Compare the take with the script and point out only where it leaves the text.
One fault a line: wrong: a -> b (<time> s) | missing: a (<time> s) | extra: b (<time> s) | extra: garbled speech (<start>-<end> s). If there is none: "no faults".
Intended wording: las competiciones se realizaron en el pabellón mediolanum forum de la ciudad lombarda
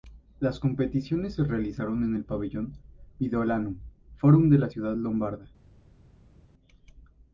no faults